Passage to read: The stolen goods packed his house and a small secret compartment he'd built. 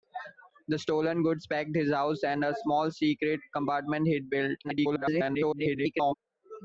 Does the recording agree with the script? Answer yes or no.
no